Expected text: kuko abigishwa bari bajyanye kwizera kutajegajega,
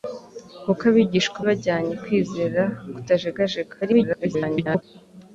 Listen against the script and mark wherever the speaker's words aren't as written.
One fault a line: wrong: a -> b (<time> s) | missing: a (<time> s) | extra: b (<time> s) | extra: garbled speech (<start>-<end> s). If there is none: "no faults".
missing: bari (1.4 s)
extra: garbled speech (3.8-4.8 s)